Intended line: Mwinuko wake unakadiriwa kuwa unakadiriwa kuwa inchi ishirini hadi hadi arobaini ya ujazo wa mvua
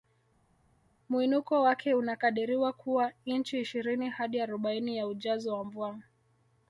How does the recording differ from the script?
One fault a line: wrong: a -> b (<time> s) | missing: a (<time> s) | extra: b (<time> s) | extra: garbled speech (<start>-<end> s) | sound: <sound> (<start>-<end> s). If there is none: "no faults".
missing: unakadiriwa kuwa (3.1 s)
missing: hadi (4.4 s)